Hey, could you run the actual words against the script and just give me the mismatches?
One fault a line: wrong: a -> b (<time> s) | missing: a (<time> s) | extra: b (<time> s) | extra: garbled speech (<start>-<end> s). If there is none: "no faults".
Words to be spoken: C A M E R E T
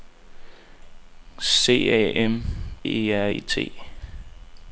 no faults